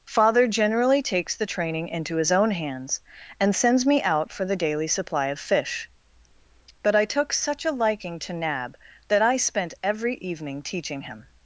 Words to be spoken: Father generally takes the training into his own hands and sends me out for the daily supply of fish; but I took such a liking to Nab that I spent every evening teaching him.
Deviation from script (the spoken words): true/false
false